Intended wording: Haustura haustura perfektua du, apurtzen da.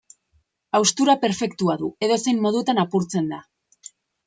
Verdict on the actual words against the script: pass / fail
fail